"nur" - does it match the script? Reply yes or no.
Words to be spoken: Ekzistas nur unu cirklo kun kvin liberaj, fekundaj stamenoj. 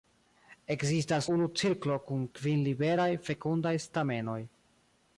no